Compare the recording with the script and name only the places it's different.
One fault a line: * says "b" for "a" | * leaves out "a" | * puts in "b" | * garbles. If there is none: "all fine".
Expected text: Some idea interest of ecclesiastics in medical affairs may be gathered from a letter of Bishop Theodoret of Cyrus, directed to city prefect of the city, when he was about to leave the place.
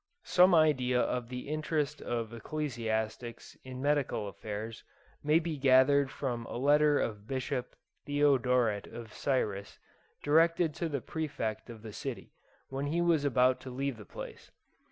* puts in "of the"
* says "the" for "city"